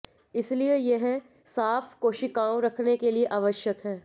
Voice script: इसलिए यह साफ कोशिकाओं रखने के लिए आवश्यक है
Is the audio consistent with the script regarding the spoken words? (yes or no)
yes